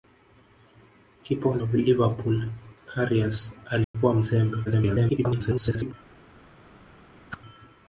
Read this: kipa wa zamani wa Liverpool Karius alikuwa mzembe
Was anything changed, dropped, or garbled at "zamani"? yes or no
yes